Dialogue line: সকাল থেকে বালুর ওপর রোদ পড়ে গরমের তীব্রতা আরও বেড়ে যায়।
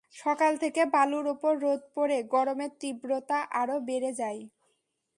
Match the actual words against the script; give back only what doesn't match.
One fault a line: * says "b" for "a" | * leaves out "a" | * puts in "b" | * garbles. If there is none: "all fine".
all fine